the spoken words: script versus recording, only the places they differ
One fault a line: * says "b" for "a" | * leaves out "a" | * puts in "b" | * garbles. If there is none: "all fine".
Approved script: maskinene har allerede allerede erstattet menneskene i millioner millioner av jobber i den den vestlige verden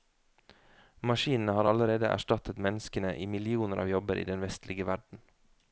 * leaves out "allerede"
* leaves out "millioner"
* leaves out "den"